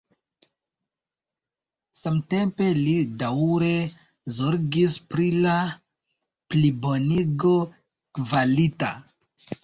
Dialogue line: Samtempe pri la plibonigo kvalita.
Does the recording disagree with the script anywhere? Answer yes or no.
yes